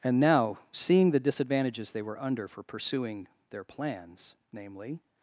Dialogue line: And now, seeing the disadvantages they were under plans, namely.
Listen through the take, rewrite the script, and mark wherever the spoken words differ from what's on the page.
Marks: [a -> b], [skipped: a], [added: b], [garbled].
And now, seeing the disadvantages they were under [added: for pursuing their] plans, namely.